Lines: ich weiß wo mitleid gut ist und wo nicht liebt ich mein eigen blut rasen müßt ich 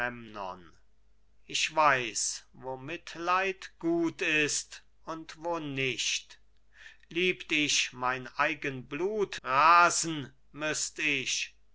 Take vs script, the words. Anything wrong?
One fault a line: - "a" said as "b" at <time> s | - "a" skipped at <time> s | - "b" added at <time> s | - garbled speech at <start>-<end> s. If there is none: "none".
none